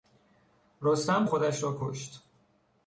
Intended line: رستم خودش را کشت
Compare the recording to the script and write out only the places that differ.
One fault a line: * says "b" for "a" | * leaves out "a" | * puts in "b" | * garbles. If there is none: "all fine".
all fine